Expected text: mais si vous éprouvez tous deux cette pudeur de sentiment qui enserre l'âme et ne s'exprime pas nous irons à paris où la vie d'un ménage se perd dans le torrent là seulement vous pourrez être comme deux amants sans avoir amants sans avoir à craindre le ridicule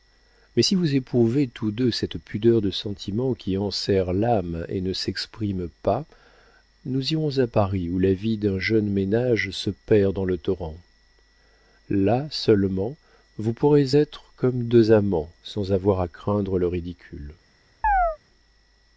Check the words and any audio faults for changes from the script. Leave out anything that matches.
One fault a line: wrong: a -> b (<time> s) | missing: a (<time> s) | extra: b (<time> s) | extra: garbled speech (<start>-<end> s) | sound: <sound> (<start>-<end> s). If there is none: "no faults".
extra: jeune (8.6 s)
missing: amants sans avoir (16.0 s)
sound: chirp (17.8-18.2 s)